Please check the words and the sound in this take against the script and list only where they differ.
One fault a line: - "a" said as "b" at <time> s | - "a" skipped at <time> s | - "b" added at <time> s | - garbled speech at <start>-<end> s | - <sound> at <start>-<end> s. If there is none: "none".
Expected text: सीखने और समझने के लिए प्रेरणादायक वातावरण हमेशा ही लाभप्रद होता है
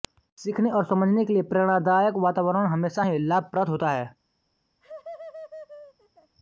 - laugh at 4.8-6.3 s